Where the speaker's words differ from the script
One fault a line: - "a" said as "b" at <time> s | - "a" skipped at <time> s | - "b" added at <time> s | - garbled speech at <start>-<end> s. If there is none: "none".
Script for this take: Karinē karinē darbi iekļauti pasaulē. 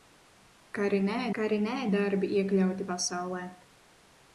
none